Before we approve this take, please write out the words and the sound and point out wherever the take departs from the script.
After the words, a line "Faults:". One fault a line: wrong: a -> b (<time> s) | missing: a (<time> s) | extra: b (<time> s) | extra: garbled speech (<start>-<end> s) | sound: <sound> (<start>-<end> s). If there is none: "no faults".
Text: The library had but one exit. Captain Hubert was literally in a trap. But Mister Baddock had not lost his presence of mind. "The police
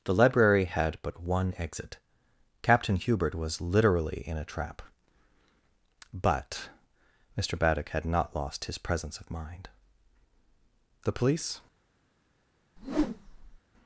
The library had but one exit. Captain Hubert was literally in a trap. But Mister Baddock had not lost his presence of mind. "The police
Faults:
sound: whoosh (12.8-13.6 s)